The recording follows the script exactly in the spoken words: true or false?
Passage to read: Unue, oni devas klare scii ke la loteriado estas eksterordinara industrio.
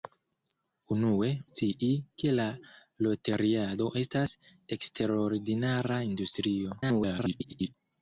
false